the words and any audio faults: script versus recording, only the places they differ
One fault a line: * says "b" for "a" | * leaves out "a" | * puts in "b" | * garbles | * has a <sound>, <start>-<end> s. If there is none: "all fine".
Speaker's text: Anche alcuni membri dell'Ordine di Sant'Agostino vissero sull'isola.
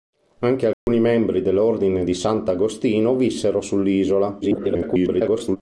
* has a dropout, 0.7-0.9 s
* garbles